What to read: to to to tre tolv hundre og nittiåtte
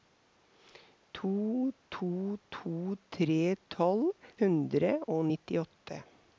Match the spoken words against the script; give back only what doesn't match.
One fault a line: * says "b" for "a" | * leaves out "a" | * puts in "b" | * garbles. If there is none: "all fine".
all fine